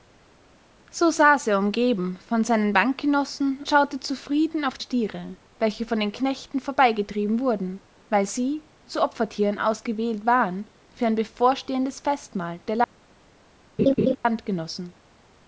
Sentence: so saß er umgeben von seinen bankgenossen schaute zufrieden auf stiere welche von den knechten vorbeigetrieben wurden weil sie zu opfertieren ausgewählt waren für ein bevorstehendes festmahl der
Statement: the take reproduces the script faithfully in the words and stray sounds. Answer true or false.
false